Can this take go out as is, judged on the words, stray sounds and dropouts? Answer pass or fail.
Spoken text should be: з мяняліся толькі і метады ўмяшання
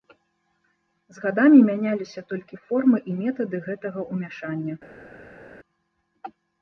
fail